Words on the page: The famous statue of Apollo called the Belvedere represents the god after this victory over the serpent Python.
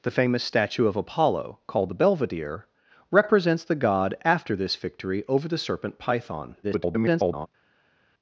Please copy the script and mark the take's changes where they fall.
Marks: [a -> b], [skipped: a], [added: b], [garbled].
The famous statue of Apollo called the Belvedere represents the god after this victory over the serpent Python. [garbled]